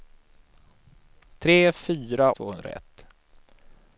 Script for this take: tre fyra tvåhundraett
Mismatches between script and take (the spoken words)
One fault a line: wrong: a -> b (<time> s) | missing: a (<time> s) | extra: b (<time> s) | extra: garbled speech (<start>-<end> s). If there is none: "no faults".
no faults